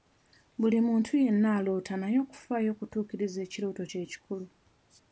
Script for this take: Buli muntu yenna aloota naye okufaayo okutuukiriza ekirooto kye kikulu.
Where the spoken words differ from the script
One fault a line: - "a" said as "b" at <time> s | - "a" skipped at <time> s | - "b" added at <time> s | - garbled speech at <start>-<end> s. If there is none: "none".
none